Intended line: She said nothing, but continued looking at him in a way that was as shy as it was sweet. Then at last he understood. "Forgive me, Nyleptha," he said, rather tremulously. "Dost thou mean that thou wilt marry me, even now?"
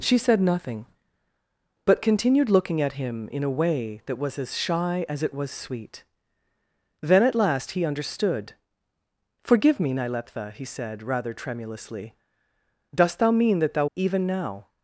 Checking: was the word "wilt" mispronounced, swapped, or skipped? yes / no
yes